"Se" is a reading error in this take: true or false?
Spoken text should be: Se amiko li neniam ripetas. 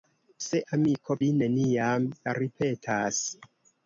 false